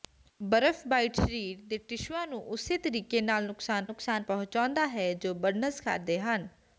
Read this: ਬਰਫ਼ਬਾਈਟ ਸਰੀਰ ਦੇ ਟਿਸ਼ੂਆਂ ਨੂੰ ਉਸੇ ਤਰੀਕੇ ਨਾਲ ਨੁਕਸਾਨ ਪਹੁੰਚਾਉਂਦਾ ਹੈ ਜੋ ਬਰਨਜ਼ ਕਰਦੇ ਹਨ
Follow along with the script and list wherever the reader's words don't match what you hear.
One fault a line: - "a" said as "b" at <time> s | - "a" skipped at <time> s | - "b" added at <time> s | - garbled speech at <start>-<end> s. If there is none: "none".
- "ਨੁਕਸਾਨ" added at 3.9 s